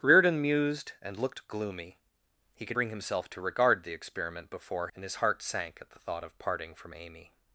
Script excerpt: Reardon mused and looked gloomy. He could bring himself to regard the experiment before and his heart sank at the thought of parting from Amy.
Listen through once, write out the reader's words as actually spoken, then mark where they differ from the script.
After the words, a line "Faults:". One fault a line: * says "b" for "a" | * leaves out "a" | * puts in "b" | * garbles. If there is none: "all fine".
Reardon mused and looked gloomy. He could bring himself to regard the experiment before and his heart sank at the thought of parting from Amy.
Faults:
all fine